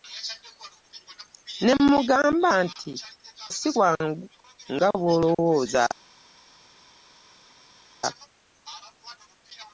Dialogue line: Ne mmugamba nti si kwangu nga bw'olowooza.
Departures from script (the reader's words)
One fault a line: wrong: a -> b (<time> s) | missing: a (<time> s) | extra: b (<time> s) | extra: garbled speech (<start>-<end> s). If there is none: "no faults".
no faults